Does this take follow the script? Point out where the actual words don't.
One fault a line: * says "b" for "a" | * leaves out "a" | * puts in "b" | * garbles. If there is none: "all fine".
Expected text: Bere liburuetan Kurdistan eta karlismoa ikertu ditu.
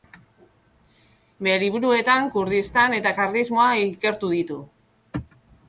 all fine